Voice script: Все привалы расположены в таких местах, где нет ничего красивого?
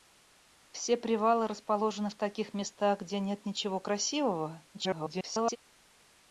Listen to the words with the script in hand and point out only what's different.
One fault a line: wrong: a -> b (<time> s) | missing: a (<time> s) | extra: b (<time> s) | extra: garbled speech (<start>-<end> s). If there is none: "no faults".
extra: garbled speech (4.7-5.6 s)